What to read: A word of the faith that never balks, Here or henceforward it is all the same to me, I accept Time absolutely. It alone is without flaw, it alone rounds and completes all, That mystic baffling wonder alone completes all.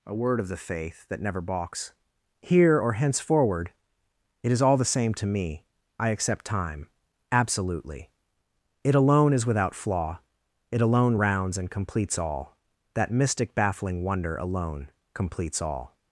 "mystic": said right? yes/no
yes